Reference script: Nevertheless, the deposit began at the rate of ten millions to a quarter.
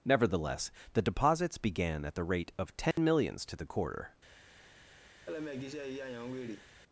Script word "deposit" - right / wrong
wrong